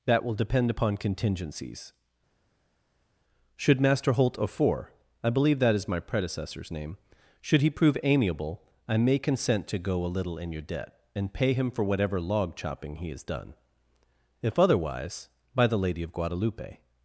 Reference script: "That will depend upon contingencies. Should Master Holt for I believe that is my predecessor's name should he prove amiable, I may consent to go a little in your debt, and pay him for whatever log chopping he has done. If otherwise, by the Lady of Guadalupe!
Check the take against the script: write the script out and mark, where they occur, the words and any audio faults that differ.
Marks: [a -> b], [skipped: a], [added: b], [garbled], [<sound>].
"That will depend upon contingencies. Should Master Holt [for -> of four] I believe that is my predecessor's name should he prove amiable, I may consent to go a little in your debt, and pay him for whatever log chopping he has done. If otherwise, by the Lady of Guadalupe!